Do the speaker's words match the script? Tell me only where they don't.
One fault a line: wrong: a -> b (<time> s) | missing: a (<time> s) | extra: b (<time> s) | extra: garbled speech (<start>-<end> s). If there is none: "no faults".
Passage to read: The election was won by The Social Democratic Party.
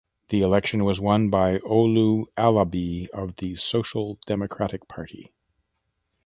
extra: Olu Alabi of (1.6 s)